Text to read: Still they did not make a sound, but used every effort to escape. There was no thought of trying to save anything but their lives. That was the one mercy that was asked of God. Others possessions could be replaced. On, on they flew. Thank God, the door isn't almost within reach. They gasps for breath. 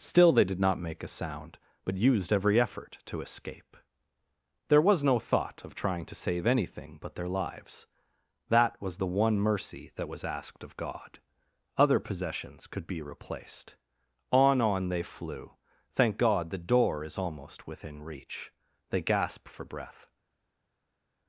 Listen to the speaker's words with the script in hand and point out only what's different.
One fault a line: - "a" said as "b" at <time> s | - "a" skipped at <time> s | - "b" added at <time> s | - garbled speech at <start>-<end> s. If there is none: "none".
- "Others" said as "Other" at 11.8 s
- "isn't" said as "is" at 17.0 s
- "gasps" said as "gasp" at 19.0 s